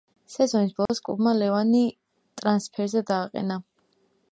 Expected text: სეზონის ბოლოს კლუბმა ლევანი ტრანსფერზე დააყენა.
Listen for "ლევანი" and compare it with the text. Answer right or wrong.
right